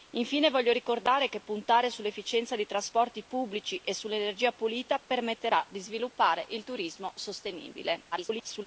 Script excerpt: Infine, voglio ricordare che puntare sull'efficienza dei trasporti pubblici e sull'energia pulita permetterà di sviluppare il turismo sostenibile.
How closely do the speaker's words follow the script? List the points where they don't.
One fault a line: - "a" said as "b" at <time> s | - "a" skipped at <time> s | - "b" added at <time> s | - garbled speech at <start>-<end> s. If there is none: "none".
- garbled speech at 8.1-8.7 s